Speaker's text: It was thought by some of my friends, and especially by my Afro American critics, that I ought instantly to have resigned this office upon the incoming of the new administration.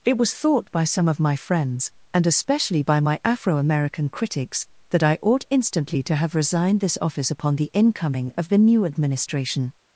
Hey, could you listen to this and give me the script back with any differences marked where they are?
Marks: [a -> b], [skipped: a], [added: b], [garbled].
It was thought by some of my friends, and especially by my Afro American critics, that I ought instantly to have resigned this office upon the incoming of the new administration.